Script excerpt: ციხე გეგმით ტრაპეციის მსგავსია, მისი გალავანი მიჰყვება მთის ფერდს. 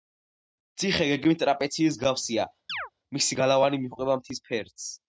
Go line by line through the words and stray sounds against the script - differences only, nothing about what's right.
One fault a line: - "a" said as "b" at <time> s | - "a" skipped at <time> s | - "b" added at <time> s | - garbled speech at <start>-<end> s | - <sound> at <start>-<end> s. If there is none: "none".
- chirp at 2.7-2.9 s